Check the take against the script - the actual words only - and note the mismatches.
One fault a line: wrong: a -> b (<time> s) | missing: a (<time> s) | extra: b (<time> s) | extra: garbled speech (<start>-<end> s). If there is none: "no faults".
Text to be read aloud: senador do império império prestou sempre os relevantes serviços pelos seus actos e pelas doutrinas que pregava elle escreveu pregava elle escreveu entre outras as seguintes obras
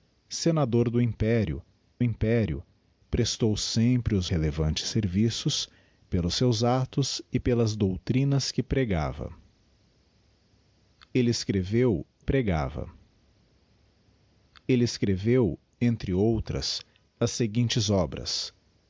no faults